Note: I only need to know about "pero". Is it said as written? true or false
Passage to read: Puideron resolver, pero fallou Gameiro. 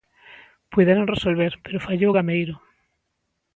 true